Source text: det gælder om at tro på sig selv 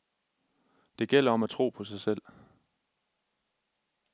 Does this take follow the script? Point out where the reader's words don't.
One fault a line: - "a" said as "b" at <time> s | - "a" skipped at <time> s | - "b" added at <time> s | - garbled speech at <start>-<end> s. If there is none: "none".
none